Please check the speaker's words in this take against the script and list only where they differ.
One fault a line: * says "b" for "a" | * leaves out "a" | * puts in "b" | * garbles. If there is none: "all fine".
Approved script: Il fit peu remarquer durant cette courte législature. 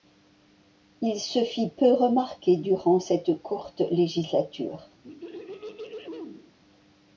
* puts in "se"